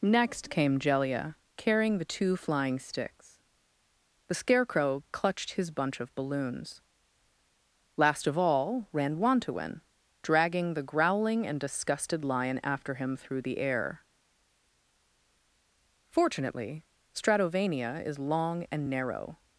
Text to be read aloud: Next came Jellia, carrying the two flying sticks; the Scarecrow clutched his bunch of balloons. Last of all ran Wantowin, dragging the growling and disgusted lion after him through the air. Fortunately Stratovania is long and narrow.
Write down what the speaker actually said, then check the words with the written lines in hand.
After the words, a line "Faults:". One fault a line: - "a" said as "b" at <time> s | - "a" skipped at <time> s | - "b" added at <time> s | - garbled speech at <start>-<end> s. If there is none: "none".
Next came Jellia, carrying the two flying sticks; the Scarecrow clutched his bunch of balloons. Last of all ran Wantowin, dragging the growling and disgusted lion after him through the air. Fortunately Stratovania is long and narrow.
Faults:
none